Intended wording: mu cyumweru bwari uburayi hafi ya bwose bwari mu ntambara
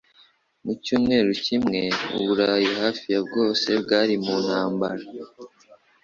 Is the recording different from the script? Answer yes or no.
yes